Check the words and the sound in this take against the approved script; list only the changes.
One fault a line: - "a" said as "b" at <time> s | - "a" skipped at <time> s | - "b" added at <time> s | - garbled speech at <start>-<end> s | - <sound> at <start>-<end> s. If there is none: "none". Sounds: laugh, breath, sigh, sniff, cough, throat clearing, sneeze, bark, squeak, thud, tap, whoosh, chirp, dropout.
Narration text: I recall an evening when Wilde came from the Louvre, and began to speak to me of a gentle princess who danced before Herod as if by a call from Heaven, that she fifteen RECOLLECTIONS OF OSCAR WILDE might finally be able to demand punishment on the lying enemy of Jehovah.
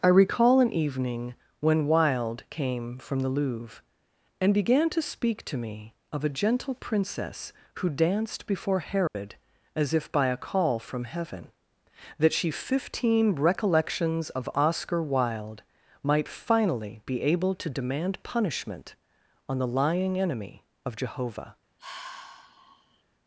- dropout at 9.1-9.2 s
- sigh at 21.8-23.0 s